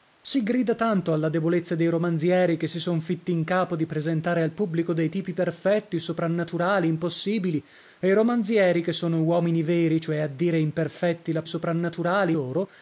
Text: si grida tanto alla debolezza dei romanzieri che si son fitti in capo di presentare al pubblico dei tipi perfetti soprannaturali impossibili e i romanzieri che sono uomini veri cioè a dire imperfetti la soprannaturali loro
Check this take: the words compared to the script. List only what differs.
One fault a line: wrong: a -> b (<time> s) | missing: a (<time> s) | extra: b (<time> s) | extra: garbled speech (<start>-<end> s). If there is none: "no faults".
no faults